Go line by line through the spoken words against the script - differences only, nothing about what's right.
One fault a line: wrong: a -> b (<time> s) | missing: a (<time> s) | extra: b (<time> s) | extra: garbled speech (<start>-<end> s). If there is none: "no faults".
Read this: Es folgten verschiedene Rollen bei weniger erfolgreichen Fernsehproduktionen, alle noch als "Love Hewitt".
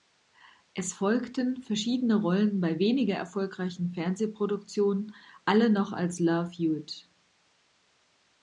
no faults